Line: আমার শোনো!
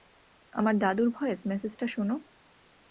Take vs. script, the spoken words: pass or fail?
fail